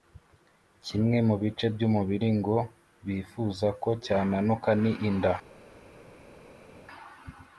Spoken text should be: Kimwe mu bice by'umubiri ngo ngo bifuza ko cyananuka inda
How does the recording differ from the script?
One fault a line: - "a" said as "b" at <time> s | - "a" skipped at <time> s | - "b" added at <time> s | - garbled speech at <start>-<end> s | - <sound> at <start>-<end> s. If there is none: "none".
- "ngo" skipped at 2.6 s
- "ni" added at 4.8 s